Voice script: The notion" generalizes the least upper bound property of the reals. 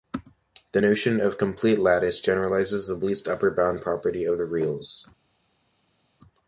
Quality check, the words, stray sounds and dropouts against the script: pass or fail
fail